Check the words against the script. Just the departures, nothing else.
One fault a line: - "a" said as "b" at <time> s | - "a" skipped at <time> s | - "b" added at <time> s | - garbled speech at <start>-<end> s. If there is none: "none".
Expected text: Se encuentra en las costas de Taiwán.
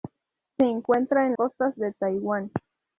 - "las" skipped at 1.4 s